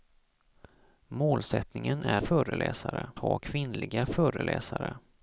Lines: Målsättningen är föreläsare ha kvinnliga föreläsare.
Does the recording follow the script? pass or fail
pass